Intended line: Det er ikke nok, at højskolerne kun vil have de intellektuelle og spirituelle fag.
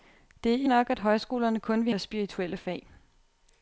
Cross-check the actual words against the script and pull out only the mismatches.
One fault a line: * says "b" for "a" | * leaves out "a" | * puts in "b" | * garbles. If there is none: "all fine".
* leaves out "ikke"
* leaves out "have de intellektuelle"